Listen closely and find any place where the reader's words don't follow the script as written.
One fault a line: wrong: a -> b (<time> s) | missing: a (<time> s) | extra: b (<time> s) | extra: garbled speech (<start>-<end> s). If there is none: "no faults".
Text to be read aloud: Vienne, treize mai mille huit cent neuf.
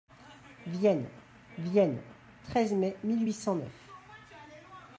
extra: vienne (1.6 s)